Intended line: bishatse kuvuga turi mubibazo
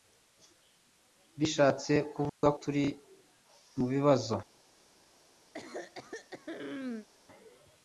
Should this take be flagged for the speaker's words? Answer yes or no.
no